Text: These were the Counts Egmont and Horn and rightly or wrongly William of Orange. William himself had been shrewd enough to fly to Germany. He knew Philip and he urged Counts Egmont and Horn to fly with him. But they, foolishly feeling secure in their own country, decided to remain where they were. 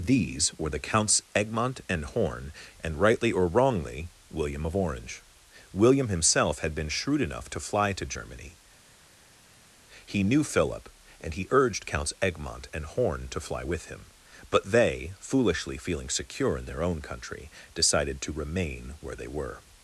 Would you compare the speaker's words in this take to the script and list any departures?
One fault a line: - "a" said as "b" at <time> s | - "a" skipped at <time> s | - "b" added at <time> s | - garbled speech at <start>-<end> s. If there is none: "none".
none